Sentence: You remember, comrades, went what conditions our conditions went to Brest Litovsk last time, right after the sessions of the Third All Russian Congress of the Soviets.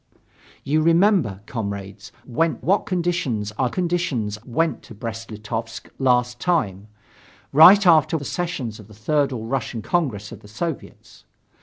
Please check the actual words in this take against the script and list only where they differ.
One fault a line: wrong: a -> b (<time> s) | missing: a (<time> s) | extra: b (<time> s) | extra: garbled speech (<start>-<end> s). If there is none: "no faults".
no faults